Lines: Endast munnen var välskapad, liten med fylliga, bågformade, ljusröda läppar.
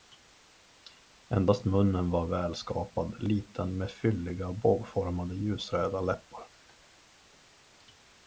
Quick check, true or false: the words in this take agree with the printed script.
true